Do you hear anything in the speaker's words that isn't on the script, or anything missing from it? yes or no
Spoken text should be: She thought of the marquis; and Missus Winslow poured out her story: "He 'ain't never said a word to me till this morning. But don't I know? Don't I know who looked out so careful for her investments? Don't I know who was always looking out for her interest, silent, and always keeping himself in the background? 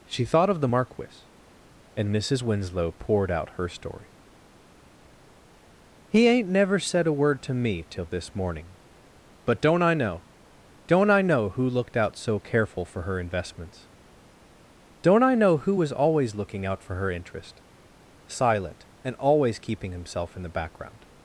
no